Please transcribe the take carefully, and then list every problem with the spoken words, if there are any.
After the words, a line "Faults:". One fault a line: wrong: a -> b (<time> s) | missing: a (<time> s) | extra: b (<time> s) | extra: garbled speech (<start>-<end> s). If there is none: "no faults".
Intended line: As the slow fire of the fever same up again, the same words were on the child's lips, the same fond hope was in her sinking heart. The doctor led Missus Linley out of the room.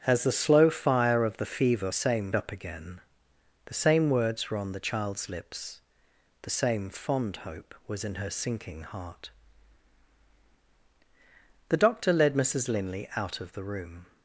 As the slow fire of the fever same up again, the same words were on the child's lips, the same fond hope was in her sinking heart. The doctor led Missus Linley out of the room.
Faults:
no faults